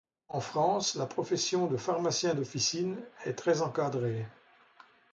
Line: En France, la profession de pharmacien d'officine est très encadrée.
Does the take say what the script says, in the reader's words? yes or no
yes